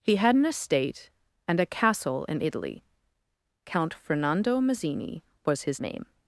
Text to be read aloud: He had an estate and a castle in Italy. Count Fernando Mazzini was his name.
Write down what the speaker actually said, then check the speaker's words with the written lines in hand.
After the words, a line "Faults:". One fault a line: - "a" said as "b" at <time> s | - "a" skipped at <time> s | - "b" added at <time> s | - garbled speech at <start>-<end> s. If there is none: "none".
He had an estate and a castle in Italy. Count Fernando Mazzini was his name.
Faults:
none